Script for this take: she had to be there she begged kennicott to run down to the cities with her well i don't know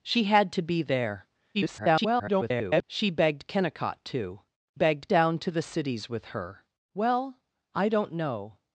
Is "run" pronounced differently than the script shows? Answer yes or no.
yes